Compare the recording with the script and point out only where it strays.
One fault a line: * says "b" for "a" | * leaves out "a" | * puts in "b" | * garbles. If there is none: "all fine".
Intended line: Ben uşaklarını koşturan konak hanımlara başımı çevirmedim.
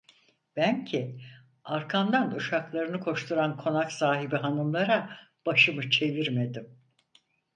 * puts in "ki arkamdan"
* puts in "sahibi"